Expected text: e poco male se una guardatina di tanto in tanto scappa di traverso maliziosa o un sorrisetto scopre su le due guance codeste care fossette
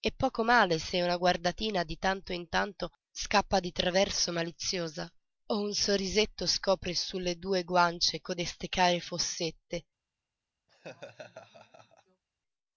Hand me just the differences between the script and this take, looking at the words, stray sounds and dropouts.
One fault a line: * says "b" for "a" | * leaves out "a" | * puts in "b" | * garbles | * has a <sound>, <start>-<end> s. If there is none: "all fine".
* has a laugh, 10.7-12.2 s